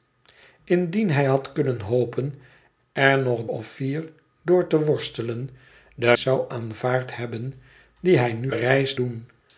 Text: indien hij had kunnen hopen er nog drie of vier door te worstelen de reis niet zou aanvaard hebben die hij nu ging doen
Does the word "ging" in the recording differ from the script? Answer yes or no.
yes